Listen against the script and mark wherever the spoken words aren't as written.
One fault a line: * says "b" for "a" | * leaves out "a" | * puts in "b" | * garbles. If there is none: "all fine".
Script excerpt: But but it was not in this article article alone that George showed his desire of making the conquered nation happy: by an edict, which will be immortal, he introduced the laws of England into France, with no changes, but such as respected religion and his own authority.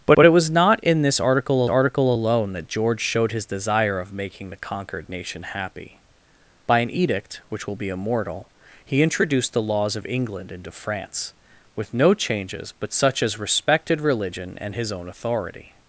all fine